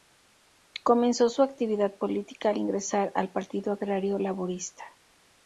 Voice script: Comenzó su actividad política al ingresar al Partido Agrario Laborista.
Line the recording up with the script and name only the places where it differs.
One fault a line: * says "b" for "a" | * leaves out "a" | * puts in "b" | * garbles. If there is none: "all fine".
all fine